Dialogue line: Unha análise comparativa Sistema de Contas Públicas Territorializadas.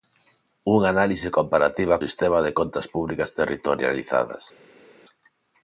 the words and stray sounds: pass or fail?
pass